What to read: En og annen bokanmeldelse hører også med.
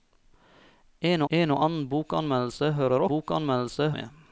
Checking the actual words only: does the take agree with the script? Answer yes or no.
no